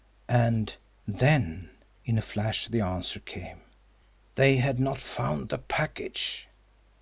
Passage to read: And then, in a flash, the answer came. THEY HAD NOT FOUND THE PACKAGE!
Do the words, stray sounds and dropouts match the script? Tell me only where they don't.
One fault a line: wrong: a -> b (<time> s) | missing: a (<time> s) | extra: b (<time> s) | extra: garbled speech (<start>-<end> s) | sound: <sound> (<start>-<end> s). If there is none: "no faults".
no faults